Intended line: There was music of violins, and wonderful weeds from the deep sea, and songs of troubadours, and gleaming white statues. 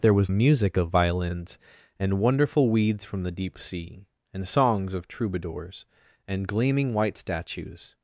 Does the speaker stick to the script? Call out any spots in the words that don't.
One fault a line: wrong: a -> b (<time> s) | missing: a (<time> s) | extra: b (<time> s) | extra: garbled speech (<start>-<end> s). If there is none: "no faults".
no faults